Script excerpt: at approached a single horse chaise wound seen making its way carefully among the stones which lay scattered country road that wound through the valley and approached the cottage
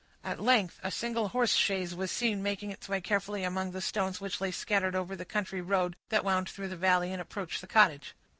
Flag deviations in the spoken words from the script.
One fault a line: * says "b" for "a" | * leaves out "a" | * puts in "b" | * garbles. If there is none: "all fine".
* says "length" for "approached"
* says "was" for "wound"
* puts in "over the"